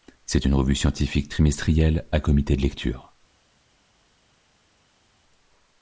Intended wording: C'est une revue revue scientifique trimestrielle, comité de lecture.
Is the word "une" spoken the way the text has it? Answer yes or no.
yes